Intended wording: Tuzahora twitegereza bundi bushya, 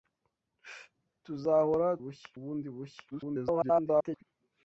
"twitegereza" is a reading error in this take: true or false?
true